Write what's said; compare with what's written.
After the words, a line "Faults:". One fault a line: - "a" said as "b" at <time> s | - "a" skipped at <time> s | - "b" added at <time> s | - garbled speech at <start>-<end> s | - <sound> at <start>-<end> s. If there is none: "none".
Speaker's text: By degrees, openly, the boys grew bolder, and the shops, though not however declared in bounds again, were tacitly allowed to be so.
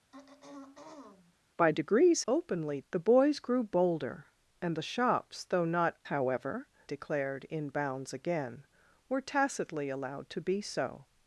By degrees, openly, the boys grew bolder, and the shops, though not however declared in bounds again, were tacitly allowed to be so.
Faults:
- throat clearing at 0.1-1.4 s